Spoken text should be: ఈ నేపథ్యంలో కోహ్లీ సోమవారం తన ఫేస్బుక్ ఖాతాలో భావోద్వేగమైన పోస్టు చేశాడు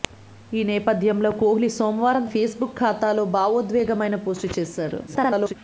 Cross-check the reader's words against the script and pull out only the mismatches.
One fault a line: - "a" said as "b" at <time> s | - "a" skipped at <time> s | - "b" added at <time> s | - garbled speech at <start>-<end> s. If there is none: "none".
- "తన" skipped at 2.2 s
- garbled speech at 5.1-5.5 s